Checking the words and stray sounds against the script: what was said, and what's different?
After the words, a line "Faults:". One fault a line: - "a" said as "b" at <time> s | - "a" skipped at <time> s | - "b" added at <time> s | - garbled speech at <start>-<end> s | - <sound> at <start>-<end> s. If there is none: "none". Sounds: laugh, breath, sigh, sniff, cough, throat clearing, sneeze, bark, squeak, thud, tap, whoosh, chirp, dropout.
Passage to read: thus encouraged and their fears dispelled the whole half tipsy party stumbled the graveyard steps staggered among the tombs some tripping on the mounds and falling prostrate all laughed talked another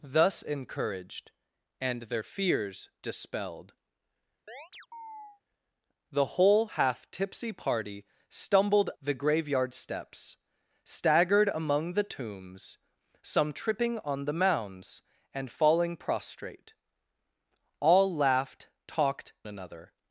thus encouraged and their fears dispelled the whole half tipsy party stumbled the graveyard steps staggered among the tombs some tripping on the mounds and falling prostrate all laughed talked another
Faults:
- chirp at 4.5-5.4 s